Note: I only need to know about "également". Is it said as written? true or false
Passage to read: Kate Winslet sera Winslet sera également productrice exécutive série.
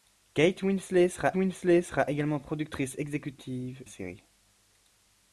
true